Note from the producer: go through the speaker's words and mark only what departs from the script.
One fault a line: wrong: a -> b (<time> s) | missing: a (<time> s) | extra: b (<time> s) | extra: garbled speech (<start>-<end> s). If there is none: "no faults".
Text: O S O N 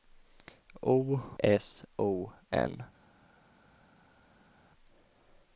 no faults